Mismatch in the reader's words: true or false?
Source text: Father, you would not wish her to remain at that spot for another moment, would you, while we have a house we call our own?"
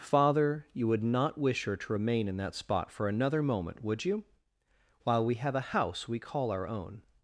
true